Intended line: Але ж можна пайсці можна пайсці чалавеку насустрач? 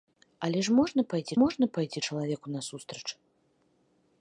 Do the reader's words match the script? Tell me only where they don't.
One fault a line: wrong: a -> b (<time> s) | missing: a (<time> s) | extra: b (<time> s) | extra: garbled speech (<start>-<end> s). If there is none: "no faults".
no faults